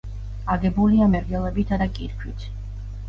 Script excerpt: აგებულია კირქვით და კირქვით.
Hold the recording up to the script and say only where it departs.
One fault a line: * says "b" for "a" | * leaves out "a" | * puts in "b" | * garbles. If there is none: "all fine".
* says "მერგელებითა" for "კირქვით"